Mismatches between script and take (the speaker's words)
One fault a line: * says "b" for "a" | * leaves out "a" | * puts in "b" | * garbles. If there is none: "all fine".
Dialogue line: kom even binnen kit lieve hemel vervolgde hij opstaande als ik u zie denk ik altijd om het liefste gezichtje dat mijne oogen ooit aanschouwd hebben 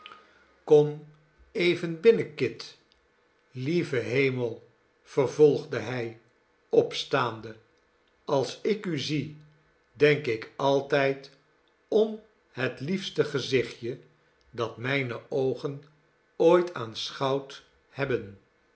all fine